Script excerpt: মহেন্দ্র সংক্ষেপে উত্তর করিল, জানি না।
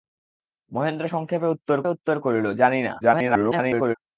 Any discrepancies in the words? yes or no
yes